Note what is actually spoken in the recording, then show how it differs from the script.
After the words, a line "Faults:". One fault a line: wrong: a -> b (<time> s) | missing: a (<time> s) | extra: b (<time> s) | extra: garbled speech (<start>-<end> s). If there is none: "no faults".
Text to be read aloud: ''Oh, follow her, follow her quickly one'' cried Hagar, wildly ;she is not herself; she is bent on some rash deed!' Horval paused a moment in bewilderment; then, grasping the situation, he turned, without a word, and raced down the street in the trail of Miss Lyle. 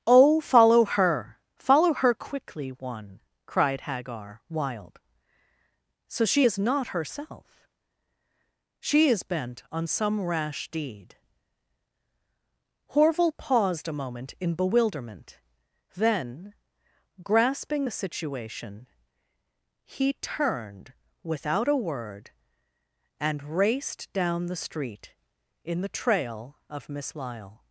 ''Oh, follow her, follow her quickly one'' cried Hagar, wild so ;she is not herself; she is bent on some rash deed!' Horval paused a moment in bewilderment; then, grasping the situation, he turned, without a word, and raced down the street in the trail of Miss Lyle.
Faults:
wrong: wildly -> wild so (4.5 s)